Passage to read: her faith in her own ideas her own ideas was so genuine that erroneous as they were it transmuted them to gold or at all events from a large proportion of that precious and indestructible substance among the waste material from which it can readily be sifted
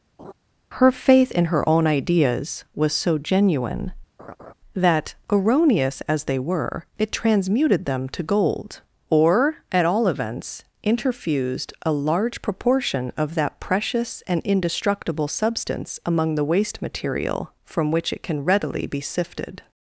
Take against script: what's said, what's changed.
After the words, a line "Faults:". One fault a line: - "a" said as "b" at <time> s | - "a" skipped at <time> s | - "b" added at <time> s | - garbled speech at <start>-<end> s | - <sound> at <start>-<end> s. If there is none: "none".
her faith in her own ideas was so genuine that erroneous as they were it transmuted them to gold or at all events interfused a large proportion of that precious and indestructible substance among the waste material from which it can readily be sifted
Faults:
- laugh at 0.2-0.3 s
- "her own ideas" skipped at 2.6 s
- laugh at 4.2-4.5 s
- "from" said as "interfused" at 10.8 s